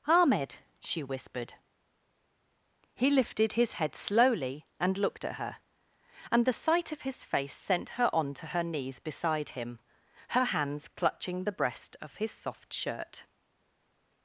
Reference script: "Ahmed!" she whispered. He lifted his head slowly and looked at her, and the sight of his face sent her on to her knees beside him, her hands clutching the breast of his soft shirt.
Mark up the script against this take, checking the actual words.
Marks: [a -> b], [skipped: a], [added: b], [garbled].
"Ahmed!" she whispered. He lifted his head slowly and looked at her, and the sight of his face sent her on to her knees beside him, her hands clutching the breast of his soft shirt.